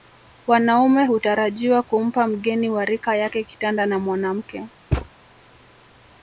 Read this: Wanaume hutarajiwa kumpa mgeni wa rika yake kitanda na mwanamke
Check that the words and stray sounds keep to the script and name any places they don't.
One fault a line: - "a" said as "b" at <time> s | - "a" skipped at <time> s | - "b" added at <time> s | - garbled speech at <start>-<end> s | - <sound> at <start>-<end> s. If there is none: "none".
- thud at 4.9-5.1 s